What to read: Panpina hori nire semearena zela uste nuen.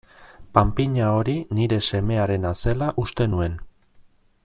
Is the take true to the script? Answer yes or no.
yes